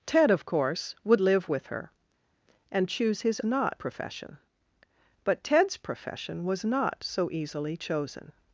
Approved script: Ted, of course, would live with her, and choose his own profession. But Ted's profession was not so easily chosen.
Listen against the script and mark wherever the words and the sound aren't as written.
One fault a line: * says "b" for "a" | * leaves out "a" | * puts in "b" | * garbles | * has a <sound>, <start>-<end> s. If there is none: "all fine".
* says "not" for "own"